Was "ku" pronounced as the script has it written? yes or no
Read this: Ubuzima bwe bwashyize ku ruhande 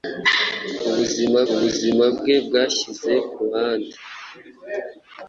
no